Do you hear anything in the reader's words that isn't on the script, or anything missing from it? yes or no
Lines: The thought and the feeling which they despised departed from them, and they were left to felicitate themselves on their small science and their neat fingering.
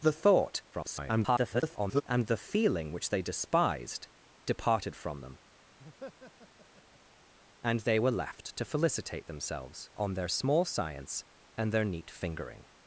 yes